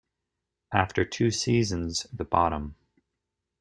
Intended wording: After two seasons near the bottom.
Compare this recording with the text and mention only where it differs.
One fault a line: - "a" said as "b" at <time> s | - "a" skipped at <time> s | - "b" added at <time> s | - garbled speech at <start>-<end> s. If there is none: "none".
- "near" skipped at 2.1 s